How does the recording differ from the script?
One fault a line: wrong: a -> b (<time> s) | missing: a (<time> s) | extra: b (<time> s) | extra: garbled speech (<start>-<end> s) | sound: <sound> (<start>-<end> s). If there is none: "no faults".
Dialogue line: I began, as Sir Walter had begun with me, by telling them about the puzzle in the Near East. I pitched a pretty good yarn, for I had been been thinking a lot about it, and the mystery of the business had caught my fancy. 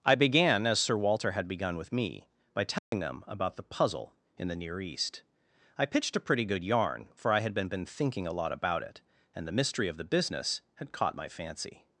sound: dropout (2.8-2.9 s)